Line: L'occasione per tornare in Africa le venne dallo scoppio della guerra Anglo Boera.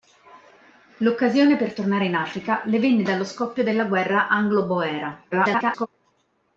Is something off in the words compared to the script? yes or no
yes